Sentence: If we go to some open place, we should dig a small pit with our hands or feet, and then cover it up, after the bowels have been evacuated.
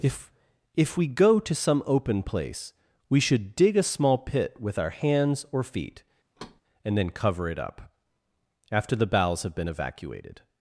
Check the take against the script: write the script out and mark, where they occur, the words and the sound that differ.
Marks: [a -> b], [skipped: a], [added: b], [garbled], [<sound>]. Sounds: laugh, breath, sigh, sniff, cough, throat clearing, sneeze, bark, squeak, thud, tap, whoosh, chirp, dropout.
If [added: if] we go to some open place, we should dig a small pit with our hands or feet, [thud] and then cover it up, after the bowels have been evacuated.